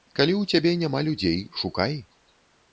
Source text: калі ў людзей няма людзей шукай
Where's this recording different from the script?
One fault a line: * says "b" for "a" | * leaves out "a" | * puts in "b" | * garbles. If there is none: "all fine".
* says "цябе" for "людзей"